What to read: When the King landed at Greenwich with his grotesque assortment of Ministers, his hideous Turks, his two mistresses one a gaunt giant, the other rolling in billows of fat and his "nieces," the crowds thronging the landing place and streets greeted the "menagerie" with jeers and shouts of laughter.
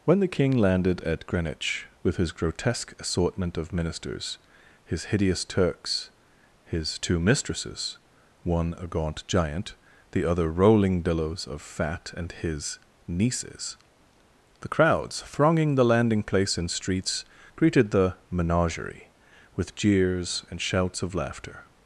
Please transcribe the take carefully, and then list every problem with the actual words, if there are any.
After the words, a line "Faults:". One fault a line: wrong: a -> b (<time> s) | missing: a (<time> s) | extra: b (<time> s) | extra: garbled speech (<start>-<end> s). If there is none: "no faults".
When the King landed at Greenwich with his grotesque assortment of Ministers, his hideous Turks, his two mistresses one a gaunt giant, the other rolling billows of fat and his "nieces," the crowds thronging the landing place and streets greeted the "menagerie" with jeers and shouts of laughter.
Faults:
missing: in (11.0 s)